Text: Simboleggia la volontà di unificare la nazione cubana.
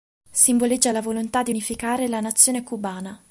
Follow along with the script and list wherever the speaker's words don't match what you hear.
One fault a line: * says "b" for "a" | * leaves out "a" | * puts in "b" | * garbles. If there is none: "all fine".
all fine